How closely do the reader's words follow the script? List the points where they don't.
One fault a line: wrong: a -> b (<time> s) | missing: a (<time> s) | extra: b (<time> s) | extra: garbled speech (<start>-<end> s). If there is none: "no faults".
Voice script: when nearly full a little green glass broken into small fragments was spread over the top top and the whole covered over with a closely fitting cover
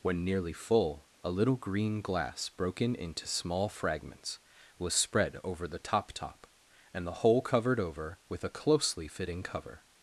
no faults